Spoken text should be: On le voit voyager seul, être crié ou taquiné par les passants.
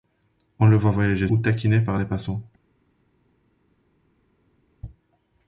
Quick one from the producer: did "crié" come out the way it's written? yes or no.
no